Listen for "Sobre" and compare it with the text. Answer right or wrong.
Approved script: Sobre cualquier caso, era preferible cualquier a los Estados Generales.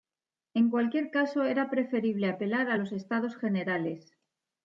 wrong